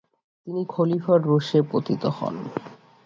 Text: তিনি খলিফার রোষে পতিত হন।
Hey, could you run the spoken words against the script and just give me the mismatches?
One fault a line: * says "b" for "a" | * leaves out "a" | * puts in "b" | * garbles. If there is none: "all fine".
all fine